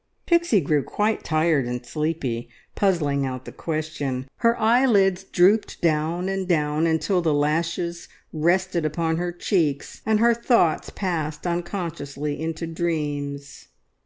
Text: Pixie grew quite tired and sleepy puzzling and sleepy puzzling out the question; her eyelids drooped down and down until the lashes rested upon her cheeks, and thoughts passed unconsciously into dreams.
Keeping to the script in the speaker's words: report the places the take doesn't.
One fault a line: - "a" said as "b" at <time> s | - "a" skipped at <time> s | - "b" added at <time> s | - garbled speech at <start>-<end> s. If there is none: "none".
- "and sleepy puzzling" skipped at 3.2 s
- "her" added at 10.2 s